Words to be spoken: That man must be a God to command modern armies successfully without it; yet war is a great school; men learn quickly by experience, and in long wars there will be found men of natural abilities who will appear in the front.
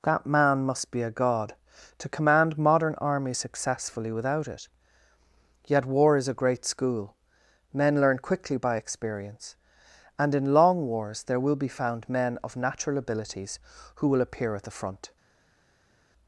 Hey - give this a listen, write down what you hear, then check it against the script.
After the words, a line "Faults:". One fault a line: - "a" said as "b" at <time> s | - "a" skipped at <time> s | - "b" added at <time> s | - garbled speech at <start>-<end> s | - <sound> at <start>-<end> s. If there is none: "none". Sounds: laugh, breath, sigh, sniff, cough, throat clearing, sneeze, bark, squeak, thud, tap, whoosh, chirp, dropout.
That man must be a God to command modern armies successfully without it; yet war is a great school; men learn quickly by experience, and in long wars there will be found men of natural abilities who will appear at the front.
Faults:
- "in" said as "at" at 14.5 s